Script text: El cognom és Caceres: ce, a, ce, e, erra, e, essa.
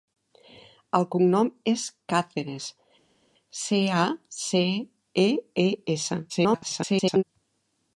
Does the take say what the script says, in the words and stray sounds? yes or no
no